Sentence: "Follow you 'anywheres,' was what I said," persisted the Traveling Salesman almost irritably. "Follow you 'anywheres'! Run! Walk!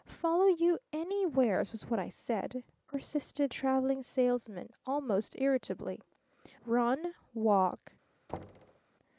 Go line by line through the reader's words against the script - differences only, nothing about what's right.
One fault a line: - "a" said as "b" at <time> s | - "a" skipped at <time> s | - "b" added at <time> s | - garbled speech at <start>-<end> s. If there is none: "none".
- "the" skipped at 3.5 s
- "Follow you anywheres" skipped at 6.0 s